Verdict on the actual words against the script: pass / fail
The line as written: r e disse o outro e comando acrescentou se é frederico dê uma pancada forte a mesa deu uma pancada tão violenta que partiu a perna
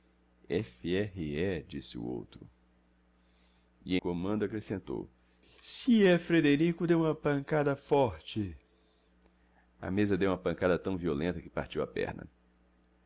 pass